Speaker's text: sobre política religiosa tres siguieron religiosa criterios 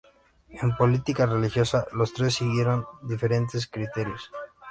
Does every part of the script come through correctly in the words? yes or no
no